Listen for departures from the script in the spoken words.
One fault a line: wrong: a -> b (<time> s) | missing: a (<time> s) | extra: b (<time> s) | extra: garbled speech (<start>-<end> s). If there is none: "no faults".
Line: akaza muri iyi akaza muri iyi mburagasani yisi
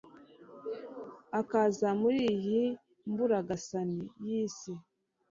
missing: akaza muri iyi (2.6 s)